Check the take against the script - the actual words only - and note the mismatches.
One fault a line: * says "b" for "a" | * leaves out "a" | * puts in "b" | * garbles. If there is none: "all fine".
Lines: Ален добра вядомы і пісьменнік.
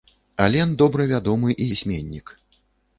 all fine